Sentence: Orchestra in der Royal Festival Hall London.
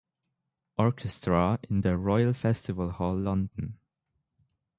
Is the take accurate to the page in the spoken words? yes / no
yes